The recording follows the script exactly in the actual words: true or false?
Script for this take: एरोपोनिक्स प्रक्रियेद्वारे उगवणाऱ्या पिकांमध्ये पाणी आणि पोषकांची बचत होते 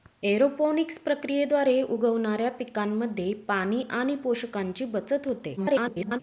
false